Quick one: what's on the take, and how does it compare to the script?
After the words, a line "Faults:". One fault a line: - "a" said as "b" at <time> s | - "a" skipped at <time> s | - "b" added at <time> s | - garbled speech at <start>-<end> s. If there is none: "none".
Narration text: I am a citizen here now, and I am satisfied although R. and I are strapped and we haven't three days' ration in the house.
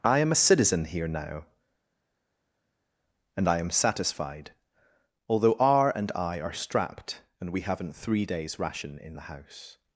I am a citizen here now, and I am satisfied although R. and I are strapped and we haven't three days' ration in the house.
Faults:
none